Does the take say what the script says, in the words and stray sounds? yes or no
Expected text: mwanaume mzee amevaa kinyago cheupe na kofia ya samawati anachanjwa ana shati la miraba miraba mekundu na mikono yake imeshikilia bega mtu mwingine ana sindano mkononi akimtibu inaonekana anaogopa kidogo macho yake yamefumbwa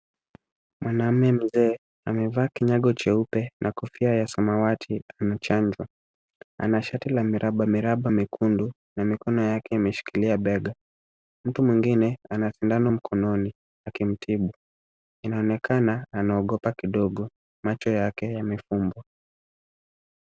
yes